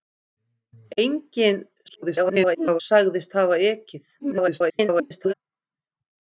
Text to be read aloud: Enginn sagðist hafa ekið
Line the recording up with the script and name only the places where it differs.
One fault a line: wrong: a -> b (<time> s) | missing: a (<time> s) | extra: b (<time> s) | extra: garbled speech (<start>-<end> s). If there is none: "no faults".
extra: garbled speech (1.9-2.8 s)
extra: garbled speech (4.2-5.3 s)